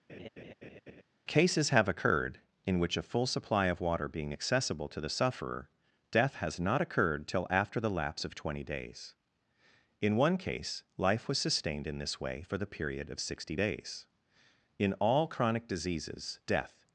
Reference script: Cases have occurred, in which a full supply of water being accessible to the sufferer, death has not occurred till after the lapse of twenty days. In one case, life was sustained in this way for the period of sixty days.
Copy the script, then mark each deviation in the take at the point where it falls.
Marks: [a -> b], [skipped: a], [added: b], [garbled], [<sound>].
[laugh] Cases have occurred, in which a full supply of water being accessible to the sufferer, death has not occurred till after the lapse of twenty days. In one case, life was sustained in this way for the period of sixty days. [added: In all chronic diseases death]